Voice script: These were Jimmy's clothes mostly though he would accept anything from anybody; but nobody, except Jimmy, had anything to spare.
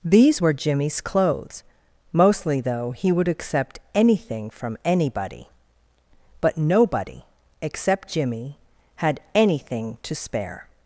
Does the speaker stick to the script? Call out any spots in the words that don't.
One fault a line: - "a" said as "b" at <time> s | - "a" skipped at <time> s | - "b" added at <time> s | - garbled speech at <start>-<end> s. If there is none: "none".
none